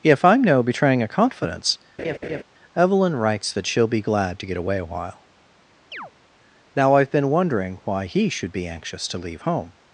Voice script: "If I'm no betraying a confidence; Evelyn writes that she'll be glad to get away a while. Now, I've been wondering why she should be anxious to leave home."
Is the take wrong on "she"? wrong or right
wrong